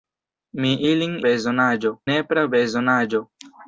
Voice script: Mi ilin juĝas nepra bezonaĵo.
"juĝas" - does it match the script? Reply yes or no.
no